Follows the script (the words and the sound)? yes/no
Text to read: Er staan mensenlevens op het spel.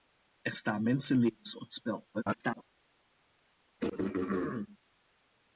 no